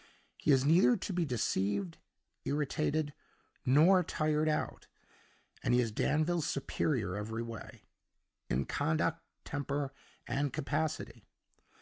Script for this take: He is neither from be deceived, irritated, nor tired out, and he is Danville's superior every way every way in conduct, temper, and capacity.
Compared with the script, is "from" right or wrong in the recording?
wrong